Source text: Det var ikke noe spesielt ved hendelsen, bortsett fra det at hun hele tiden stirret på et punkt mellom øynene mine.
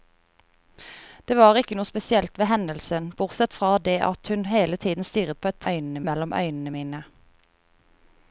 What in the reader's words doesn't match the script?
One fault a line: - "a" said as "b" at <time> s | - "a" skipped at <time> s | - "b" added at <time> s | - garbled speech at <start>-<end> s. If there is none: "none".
- "punkt" said as "øynene" at 5.7 s